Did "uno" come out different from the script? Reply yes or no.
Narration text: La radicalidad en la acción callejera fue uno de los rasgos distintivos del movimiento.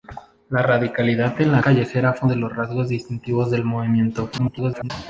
yes